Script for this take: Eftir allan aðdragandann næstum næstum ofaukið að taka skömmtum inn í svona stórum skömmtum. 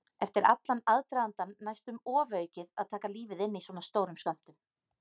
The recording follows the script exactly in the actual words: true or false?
false